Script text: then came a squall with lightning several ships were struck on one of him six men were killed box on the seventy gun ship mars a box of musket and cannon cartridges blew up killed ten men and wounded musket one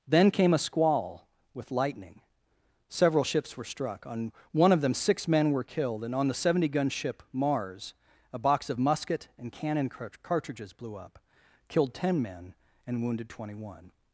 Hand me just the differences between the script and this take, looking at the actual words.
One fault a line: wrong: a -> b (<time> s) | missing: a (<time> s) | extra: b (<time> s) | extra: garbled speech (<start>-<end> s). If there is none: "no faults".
wrong: him -> them (4.8 s)
wrong: box -> and (6.0 s)
wrong: musket -> twenty (13.3 s)